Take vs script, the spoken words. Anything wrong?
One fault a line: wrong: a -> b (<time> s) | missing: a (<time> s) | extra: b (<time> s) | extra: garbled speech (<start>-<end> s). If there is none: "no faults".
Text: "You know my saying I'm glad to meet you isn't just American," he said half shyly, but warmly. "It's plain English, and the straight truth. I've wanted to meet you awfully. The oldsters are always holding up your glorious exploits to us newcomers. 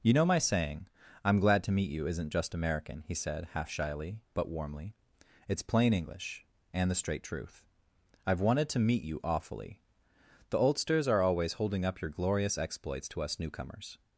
no faults